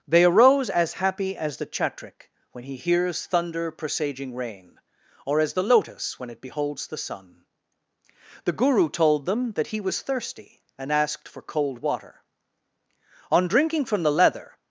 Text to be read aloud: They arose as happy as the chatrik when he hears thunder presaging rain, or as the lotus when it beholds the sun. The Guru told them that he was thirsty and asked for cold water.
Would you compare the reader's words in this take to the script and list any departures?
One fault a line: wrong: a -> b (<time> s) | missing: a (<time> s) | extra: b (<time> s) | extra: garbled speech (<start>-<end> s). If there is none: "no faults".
extra: On drinking from the leather (13.3 s)